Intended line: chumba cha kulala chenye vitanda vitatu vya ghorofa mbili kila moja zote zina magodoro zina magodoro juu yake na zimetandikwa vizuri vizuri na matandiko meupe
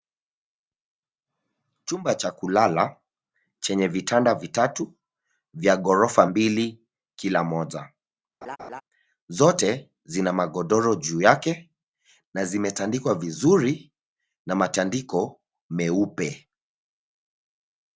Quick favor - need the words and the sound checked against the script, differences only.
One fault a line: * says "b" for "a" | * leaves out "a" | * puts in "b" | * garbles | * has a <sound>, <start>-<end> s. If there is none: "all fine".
* has a laugh, 8.4-8.8 s
* leaves out "zina magodoro"
* leaves out "vizuri"